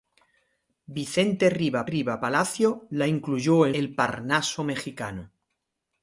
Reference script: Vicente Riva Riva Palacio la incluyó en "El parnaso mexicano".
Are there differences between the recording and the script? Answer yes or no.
no